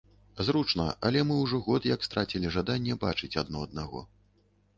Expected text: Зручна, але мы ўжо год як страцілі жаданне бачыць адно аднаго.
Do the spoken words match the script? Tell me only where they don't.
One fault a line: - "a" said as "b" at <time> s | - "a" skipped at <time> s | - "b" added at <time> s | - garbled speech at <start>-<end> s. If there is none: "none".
none